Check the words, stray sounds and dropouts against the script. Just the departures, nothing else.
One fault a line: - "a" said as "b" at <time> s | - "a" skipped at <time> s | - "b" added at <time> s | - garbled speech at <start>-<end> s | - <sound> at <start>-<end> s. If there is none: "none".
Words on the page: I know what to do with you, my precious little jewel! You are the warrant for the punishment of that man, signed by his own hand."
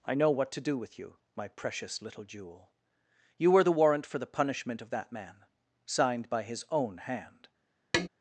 - "are" said as "were" at 3.5 s
- tap at 7.9-8.1 s